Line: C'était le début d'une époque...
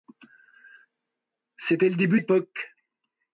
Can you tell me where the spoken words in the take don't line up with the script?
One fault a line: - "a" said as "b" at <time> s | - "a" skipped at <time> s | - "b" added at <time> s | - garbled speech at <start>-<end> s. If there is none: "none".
- "d'une" skipped at 2.2 s